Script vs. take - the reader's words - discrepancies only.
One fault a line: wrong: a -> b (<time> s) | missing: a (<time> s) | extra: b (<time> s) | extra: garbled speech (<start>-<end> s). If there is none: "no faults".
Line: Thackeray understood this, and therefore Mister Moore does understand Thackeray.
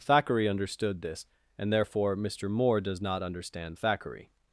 extra: not (3.0 s)